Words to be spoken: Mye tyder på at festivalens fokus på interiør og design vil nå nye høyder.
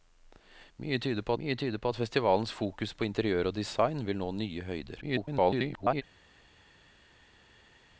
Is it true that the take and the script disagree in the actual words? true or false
true